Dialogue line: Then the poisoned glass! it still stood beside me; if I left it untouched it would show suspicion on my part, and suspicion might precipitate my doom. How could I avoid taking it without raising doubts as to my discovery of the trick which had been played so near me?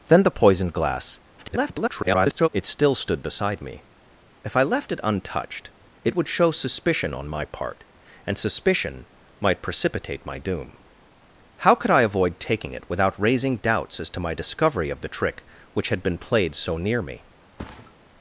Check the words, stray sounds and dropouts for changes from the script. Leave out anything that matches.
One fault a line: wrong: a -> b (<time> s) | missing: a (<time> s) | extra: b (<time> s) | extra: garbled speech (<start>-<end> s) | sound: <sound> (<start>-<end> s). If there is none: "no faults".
extra: garbled speech (1.4-2.5 s)
sound: thud (17.6-18.0 s)